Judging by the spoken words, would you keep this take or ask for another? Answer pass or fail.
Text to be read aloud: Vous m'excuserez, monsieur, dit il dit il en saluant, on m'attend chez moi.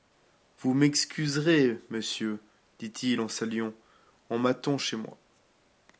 fail